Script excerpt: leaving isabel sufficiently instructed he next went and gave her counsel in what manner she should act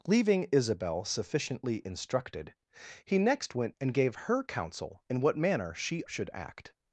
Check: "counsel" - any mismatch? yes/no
no